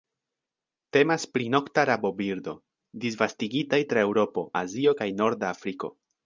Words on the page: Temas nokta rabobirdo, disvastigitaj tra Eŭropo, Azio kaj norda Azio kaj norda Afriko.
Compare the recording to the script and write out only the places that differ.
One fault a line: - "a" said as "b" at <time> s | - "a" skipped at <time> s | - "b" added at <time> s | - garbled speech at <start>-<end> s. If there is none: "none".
- "pri" added at 1.4 s
- "Azio kaj norda" skipped at 5.5 s